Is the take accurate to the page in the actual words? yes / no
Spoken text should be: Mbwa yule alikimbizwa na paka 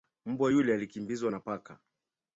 yes